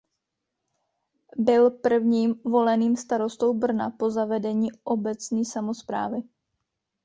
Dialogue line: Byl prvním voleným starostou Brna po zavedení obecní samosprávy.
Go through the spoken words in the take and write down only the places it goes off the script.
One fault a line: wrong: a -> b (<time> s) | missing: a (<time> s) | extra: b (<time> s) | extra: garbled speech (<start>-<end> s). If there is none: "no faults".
no faults